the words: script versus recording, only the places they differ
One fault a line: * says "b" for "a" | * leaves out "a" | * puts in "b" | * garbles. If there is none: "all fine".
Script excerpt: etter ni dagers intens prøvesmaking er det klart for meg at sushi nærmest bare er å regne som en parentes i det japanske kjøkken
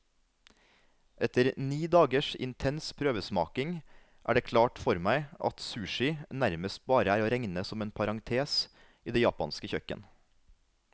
all fine